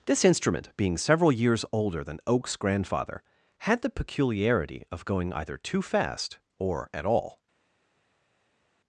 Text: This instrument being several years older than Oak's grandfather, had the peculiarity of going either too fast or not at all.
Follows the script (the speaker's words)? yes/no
no